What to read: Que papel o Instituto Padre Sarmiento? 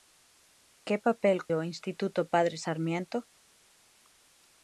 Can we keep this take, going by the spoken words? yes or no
yes